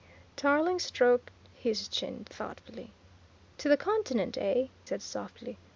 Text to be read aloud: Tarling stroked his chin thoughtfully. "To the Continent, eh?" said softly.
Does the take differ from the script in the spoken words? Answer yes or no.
no